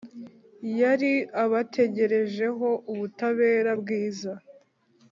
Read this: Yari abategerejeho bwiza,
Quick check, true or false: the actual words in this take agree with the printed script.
false